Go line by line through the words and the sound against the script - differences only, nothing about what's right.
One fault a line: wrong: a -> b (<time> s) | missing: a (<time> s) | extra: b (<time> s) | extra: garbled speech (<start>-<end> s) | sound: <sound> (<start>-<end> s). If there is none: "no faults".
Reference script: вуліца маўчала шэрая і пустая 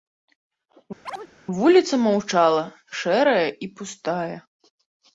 sound: chirp (1.1-1.3 s)